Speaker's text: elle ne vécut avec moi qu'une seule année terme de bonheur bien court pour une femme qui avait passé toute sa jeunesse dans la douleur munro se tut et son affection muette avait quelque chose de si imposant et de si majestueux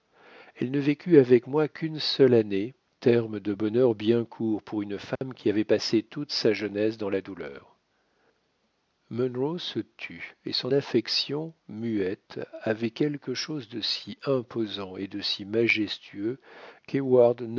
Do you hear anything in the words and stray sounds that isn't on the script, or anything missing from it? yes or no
yes